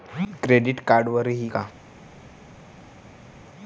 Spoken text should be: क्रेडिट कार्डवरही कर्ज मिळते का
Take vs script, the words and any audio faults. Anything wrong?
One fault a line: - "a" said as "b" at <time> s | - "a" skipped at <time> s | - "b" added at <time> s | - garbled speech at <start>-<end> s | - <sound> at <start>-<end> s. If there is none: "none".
- "कर्ज मिळते" skipped at 1.5 s